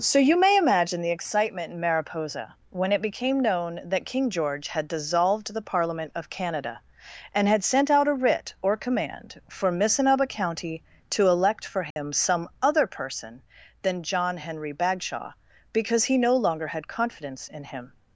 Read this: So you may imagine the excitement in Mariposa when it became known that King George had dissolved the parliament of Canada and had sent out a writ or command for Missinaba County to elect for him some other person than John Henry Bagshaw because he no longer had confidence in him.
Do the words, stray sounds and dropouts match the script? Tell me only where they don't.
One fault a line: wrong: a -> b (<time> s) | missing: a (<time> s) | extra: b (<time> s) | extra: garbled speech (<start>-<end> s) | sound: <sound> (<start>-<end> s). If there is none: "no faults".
sound: dropout (11.9-12.0 s)